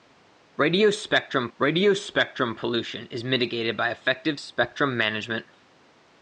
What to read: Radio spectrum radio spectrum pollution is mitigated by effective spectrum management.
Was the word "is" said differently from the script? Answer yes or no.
no